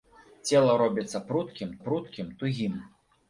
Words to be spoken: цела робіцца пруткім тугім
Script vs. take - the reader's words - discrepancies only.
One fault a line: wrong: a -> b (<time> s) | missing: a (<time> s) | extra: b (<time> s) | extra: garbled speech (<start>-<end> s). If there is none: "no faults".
extra: пруткім (1.9 s)